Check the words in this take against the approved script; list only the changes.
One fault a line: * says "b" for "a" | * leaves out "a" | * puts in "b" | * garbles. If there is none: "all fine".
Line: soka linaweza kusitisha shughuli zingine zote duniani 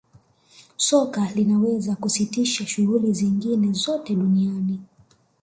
all fine